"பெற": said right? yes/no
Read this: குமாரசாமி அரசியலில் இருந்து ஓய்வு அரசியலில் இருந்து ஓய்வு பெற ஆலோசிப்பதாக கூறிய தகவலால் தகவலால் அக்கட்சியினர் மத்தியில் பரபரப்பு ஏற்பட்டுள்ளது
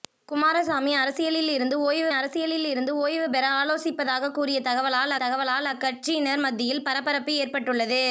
yes